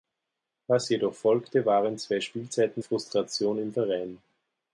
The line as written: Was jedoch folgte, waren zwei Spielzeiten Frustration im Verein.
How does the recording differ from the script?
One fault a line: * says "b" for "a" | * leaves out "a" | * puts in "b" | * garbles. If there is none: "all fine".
all fine